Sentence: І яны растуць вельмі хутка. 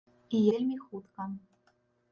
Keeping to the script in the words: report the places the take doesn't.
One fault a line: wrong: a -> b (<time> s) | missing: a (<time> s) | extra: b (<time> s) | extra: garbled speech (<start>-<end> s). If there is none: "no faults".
missing: яны растуць (0.4 s)